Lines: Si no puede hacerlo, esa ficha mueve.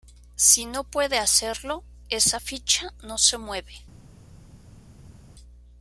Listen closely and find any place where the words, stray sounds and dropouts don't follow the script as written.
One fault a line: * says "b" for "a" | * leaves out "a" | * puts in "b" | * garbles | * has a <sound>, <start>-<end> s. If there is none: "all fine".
* puts in "no se"